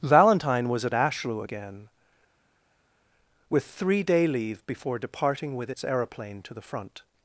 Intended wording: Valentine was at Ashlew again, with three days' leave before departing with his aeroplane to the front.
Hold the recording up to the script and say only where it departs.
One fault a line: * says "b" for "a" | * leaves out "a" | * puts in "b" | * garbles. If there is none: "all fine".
* says "day" for "days"
* says "its" for "his"